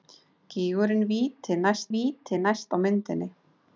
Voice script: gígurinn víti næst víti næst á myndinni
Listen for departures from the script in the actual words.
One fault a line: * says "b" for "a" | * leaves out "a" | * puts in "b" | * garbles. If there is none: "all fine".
all fine